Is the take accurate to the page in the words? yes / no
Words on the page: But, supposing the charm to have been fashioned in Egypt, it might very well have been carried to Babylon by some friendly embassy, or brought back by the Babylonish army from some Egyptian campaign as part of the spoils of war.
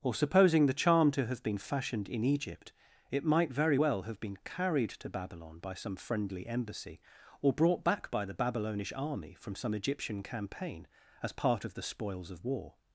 no